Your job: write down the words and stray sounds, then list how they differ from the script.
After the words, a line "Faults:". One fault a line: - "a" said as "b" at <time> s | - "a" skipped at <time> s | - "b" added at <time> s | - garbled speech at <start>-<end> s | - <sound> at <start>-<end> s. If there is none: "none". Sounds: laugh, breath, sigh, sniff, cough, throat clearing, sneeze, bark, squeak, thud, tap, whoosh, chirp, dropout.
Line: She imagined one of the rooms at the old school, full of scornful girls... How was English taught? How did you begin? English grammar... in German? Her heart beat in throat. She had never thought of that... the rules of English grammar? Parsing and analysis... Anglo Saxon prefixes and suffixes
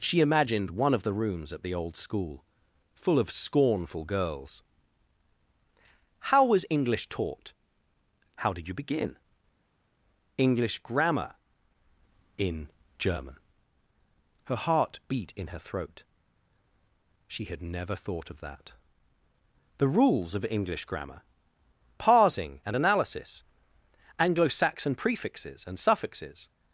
She imagined one of the rooms at the old school, full of scornful girls... How was English taught? How did you begin? English grammar... in German? Her heart beat in her throat. She had never thought of that... the rules of English grammar? Parsing and analysis... Anglo Saxon prefixes and suffixes
Faults:
- "her" added at 15.5 s